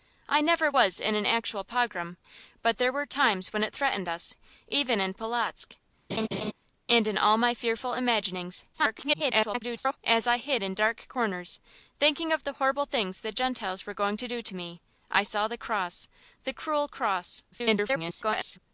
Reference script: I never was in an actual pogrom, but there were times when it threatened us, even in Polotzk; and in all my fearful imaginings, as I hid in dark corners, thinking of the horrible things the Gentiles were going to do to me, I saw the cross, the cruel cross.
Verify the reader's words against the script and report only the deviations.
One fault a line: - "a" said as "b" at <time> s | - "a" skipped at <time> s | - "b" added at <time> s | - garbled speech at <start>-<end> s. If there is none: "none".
- garbled speech at 8.7-10.0 s
- garbled speech at 17.5-18.6 s